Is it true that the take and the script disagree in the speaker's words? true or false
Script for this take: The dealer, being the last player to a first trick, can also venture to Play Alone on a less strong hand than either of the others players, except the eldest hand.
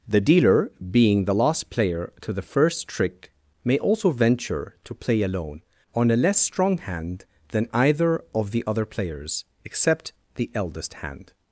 true